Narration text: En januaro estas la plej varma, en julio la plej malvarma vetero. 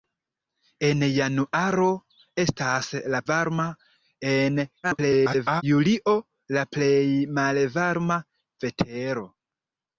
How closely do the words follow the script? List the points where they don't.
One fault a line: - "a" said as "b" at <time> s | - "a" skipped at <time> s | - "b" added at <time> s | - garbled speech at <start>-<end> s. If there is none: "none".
- "plej" skipped at 3.2 s
- garbled speech at 4.8-5.6 s